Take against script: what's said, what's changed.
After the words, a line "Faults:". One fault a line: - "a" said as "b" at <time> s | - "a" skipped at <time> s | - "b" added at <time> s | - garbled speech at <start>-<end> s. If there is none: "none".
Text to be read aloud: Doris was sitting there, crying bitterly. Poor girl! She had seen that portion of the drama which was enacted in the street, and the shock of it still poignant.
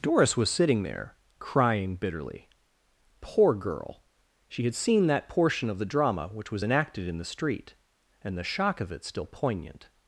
Doris was sitting there, crying bitterly. Poor girl! She had seen that portion of the drama which was enacted in the street, and the shock of it still poignant.
Faults:
none